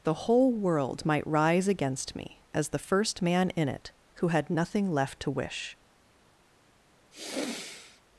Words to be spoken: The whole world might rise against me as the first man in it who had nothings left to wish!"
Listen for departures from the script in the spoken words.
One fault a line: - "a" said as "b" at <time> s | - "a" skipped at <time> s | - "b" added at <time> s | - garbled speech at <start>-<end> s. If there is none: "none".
- "nothings" said as "nothing" at 4.5 s